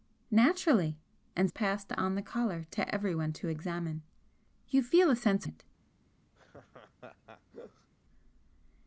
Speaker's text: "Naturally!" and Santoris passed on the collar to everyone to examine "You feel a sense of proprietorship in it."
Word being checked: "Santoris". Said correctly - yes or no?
no